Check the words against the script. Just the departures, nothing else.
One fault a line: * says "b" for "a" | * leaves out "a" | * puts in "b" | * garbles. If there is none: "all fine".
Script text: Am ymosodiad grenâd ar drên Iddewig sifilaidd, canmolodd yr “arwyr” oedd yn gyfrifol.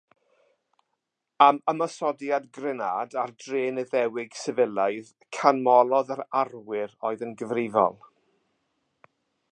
all fine